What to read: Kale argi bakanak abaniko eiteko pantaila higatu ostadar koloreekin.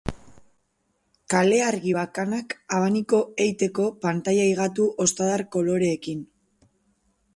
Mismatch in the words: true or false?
false